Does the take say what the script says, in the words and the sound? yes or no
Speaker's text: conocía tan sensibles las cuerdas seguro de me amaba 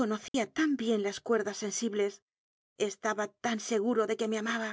no